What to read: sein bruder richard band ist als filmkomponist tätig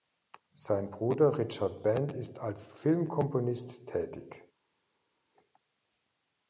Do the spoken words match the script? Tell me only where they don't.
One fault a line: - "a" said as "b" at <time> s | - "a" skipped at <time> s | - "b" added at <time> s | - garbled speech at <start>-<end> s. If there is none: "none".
none